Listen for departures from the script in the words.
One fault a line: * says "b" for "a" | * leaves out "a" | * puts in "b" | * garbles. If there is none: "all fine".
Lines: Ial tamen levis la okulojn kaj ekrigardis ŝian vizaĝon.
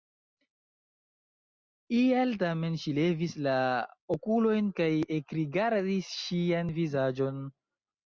* puts in "ŝi"